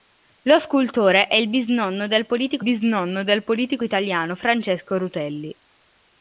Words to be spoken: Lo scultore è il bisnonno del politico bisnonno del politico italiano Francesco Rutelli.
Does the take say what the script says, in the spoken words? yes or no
yes